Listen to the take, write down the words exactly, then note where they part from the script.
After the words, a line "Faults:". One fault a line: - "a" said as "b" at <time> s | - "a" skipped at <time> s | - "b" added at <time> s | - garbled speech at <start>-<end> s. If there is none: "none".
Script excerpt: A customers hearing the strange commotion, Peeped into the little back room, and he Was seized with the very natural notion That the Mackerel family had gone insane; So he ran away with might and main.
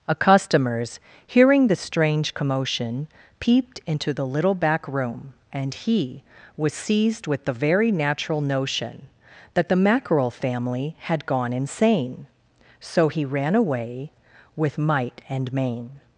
A customers hearing the strange commotion, Peeped into the little back room, and he Was seized with the very natural notion That the Mackerel family had gone insane; So he ran away with might and main.
Faults:
none